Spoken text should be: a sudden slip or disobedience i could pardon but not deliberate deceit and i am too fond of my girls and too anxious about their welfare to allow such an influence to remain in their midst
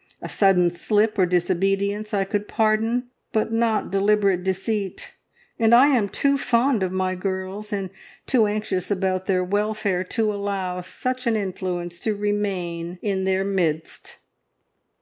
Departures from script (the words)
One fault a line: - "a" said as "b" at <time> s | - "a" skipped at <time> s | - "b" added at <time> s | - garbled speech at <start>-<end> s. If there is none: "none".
none